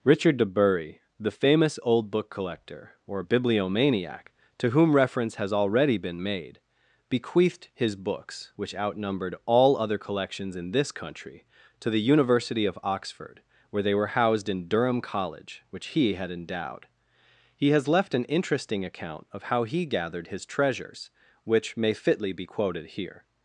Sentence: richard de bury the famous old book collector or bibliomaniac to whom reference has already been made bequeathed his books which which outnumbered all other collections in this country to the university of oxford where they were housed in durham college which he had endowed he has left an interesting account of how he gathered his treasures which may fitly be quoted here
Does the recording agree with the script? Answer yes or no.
no